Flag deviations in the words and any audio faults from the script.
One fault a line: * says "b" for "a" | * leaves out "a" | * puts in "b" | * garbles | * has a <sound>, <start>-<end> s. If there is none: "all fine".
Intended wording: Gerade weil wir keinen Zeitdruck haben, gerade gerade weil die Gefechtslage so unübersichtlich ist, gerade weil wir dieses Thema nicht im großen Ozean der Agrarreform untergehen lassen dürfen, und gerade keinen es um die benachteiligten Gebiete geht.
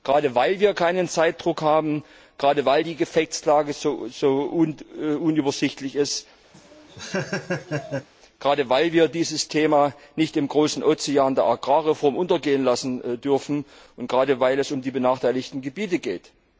* leaves out "gerade"
* has a laugh, 6.5-8.1 s
* says "weil" for "keinen"